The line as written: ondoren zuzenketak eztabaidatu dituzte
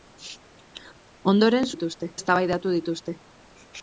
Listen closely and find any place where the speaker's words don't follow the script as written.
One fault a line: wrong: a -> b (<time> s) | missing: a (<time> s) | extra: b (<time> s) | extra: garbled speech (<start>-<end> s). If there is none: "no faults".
wrong: zuzenketak -> dituzte (1.7 s)